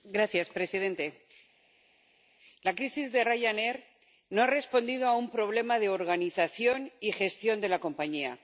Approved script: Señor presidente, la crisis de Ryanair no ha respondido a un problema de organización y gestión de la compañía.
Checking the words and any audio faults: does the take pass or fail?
pass